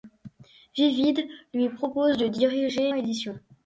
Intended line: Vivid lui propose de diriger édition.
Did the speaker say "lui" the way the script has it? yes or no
yes